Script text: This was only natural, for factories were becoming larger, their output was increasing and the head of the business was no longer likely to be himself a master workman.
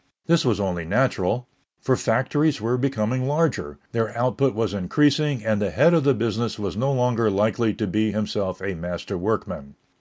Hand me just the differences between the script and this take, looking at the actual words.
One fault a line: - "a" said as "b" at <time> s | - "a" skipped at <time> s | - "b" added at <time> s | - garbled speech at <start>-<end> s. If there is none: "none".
none